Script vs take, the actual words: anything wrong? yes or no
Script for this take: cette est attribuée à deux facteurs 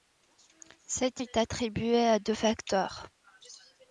no